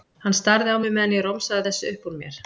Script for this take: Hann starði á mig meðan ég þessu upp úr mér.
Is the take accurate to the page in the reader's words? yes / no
no